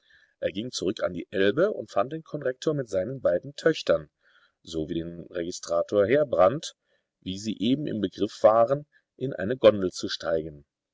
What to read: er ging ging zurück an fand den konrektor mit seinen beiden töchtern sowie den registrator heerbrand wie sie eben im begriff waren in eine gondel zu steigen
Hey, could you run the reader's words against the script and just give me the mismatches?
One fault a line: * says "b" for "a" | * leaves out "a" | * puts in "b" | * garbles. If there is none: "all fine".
* leaves out "ging"
* puts in "die elbe und"